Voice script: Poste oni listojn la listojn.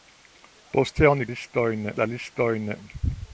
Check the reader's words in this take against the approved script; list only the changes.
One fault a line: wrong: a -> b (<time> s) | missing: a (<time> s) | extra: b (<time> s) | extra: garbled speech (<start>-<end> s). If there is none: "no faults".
no faults